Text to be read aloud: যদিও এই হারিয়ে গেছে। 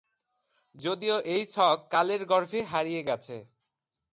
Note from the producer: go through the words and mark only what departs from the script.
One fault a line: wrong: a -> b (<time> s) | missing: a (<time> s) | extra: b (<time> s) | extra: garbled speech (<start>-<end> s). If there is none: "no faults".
extra: ছক কালের গর্ভে (1.4 s)